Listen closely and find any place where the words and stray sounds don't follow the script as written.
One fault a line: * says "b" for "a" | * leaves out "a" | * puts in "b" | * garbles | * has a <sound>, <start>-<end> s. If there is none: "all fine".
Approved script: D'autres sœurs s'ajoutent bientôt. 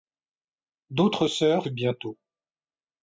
* leaves out "s'ajoutent"